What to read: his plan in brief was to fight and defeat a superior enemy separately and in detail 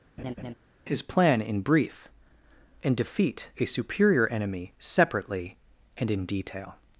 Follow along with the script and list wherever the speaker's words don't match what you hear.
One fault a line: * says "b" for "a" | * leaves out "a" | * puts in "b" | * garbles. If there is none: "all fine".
* leaves out "was to fight"